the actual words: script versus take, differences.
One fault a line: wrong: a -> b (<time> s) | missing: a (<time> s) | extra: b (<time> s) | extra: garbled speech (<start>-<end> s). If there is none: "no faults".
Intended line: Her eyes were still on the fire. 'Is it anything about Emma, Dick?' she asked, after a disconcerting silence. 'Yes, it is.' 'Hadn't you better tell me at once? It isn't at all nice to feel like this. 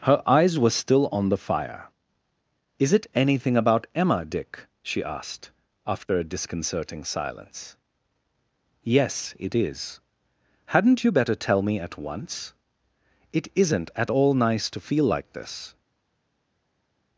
no faults